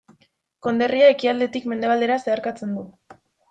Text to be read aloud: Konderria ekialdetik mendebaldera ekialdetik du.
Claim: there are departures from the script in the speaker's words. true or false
true